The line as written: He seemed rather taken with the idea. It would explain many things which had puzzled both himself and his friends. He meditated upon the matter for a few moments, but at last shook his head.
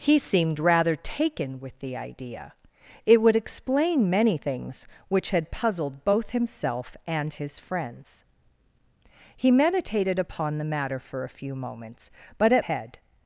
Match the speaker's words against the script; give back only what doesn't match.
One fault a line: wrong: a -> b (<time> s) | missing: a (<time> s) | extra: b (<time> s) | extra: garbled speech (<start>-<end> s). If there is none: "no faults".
missing: last shook his (12.6 s)